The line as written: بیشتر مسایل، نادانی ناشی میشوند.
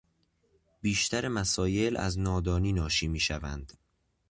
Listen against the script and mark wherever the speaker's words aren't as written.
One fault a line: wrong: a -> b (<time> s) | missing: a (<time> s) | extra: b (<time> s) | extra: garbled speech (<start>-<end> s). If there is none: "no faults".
extra: از (2.0 s)